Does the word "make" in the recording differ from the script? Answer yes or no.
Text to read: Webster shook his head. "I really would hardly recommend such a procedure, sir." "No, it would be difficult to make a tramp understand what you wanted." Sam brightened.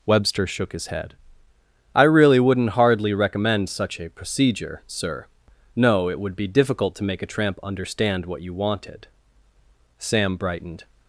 no